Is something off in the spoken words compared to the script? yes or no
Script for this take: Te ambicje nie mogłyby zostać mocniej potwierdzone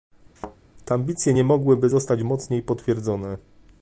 no